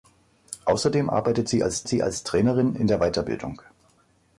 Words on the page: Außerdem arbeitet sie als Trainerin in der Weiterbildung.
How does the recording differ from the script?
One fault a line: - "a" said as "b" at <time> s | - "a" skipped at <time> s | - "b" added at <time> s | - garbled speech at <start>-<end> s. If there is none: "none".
- "sie als" added at 1.9 s